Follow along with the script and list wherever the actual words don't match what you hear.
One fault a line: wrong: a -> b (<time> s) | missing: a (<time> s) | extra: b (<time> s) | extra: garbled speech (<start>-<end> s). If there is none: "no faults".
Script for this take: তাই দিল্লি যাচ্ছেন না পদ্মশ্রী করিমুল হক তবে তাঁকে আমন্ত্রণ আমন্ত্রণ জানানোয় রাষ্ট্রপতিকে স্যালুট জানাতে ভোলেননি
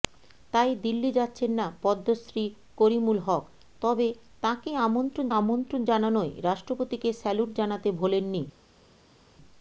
no faults